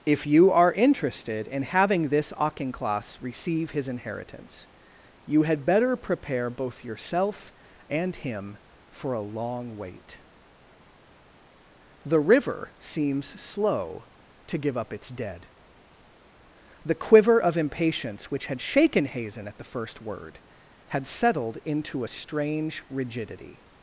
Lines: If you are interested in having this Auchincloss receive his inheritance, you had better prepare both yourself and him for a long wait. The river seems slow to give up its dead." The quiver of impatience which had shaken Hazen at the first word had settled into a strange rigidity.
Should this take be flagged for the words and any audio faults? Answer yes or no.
no